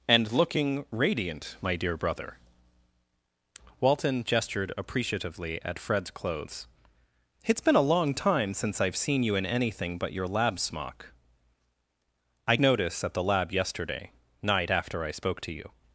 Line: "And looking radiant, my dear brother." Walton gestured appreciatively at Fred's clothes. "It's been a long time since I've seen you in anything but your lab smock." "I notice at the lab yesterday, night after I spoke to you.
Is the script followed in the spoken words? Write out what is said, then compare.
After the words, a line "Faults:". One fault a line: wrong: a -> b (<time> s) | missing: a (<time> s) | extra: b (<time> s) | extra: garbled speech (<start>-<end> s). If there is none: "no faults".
"And looking radiant, my dear brother." Walton gestured appreciatively at Fred's clothes. "It's been a long time since I've seen you in anything but your lab smock." "I notice at the lab yesterday, night after I spoke to you.
Faults:
no faults